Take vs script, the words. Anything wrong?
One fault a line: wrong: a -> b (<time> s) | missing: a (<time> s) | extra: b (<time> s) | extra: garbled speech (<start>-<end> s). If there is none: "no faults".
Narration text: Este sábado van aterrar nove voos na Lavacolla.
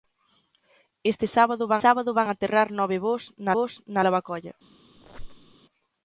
extra: sábado van (1.8 s)
extra: voos na (3.5 s)